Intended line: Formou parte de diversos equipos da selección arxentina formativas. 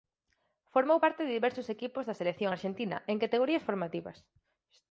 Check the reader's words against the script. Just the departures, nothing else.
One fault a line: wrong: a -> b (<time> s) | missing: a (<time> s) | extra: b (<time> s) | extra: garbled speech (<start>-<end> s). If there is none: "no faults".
extra: en categorías (3.1 s)